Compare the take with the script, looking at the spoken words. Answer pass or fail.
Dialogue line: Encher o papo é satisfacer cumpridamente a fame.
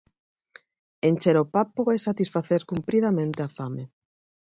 pass